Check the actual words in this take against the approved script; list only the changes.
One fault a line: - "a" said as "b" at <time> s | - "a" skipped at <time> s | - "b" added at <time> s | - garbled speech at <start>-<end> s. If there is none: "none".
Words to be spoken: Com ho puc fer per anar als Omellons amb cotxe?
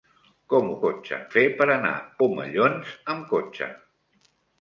- "puc" said as "cotxe" at 0.9 s
- "als" skipped at 1.9 s